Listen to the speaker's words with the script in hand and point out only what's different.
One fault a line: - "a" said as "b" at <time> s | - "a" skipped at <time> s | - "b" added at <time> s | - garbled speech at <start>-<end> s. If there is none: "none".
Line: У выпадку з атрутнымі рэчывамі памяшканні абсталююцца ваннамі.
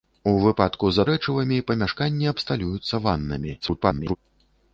- "атрутнымі" skipped at 1.0 s
- garbled speech at 3.6-4.2 s